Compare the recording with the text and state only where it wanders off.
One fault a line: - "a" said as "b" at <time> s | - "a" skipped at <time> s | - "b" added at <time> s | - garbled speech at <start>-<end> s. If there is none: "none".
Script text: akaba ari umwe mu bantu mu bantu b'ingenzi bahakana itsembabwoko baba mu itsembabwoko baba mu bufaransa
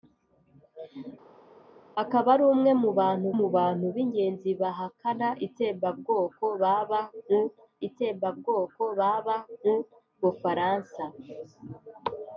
none